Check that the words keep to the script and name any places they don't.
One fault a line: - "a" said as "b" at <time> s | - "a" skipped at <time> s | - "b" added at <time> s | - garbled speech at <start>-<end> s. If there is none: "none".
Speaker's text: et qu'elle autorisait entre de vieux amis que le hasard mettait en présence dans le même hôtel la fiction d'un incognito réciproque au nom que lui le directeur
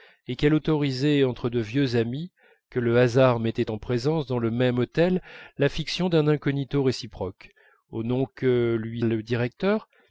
none